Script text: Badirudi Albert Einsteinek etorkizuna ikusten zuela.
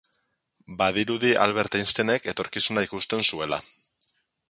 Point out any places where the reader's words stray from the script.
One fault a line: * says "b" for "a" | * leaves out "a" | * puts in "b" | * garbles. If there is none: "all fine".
all fine